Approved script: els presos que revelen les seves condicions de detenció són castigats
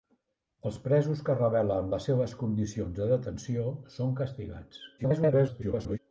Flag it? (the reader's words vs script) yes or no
yes